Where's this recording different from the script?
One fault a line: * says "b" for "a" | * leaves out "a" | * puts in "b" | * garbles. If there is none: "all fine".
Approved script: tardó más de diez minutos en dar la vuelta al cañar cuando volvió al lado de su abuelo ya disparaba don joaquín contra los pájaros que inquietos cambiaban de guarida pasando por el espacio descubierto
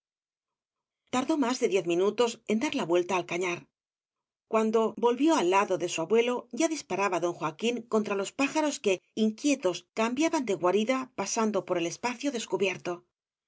all fine